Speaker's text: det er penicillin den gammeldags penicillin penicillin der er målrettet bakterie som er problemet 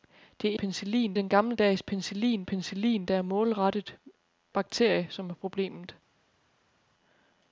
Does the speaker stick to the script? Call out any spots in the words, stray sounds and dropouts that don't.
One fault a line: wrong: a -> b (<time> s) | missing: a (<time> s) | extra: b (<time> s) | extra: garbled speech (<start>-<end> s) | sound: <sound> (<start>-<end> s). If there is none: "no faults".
no faults